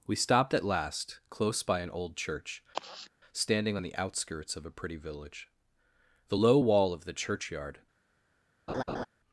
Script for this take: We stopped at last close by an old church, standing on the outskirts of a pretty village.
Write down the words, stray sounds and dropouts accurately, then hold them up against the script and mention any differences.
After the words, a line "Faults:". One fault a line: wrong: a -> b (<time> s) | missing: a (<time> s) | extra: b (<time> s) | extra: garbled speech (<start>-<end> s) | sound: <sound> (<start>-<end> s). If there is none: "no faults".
We stopped at last close by an old church, standing on the outskirts of a pretty village. The low wall of the churchyard
Faults:
sound: sigh (2.7-3.1 s)
extra: The low wall of the churchyard (6.3 s)
sound: laugh (8.7-9.1 s)